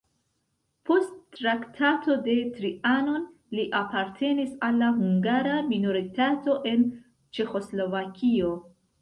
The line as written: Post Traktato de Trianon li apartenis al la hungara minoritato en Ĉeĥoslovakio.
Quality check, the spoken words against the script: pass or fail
pass